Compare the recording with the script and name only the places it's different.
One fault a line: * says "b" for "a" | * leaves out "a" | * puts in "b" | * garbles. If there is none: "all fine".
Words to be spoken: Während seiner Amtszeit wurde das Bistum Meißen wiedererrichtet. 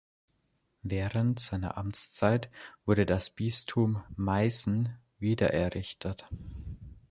all fine